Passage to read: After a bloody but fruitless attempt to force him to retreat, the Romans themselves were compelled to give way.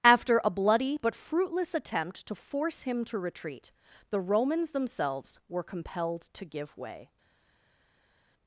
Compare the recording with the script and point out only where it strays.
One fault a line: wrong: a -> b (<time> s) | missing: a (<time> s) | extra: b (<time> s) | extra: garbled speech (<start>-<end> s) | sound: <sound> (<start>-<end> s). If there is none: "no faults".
no faults